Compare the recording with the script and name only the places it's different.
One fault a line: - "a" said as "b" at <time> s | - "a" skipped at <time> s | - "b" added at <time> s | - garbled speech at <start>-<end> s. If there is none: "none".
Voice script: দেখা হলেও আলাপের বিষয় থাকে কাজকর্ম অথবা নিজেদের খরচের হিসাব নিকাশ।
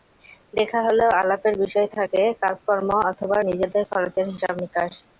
none